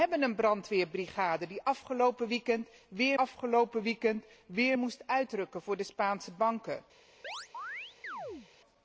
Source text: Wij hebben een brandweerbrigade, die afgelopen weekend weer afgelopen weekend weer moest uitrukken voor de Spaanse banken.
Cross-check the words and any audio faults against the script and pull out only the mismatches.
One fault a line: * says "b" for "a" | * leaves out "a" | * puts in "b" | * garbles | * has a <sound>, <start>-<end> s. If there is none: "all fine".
* has a chirp, 7.2-8.5 s